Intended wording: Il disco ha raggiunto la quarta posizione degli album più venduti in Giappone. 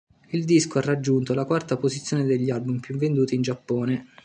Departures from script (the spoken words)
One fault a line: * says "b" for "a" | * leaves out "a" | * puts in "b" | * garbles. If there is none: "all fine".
all fine